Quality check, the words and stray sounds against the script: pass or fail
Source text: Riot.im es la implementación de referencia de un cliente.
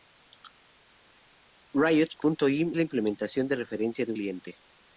fail